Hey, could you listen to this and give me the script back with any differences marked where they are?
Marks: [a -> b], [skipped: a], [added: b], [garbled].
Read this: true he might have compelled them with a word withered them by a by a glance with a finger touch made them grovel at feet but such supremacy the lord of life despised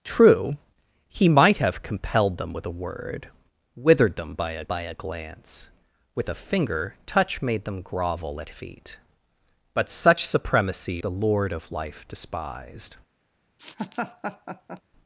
true he might have compelled them with a word withered them by a by a glance with a finger touch made them grovel at feet but such supremacy the lord of life despised